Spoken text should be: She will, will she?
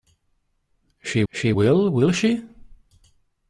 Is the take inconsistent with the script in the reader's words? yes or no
yes